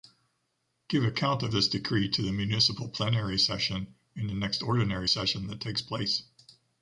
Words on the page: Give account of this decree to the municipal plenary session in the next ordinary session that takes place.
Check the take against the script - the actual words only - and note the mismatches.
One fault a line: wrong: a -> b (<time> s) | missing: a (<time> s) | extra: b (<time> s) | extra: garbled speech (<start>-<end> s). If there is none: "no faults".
no faults